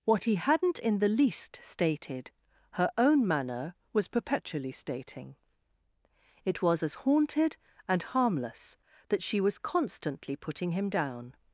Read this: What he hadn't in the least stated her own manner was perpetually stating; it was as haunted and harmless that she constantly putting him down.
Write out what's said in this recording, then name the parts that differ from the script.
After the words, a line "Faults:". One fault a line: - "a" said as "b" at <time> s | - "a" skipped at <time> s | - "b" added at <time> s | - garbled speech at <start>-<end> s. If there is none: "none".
What he hadn't in the least stated her own manner was perpetually stating; it was as haunted and harmless that she was constantly putting him down.
Faults:
- "was" added at 9.4 s